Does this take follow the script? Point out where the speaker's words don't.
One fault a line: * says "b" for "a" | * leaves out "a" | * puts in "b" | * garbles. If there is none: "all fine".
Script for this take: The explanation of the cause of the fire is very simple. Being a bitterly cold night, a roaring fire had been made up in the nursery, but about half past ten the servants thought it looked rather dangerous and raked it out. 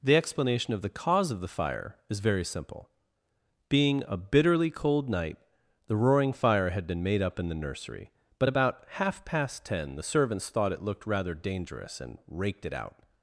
* says "the" for "a"